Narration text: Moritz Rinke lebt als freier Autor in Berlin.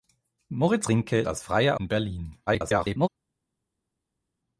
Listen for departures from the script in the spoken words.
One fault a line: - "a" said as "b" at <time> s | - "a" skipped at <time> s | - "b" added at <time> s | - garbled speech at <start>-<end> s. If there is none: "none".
- "lebt" skipped at 1.2 s
- "Autor" skipped at 1.8 s
- garbled speech at 2.5-3.1 s